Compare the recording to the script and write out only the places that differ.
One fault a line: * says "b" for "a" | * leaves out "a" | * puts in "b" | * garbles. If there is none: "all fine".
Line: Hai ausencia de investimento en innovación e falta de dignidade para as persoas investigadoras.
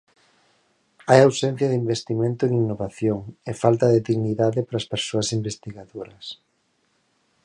all fine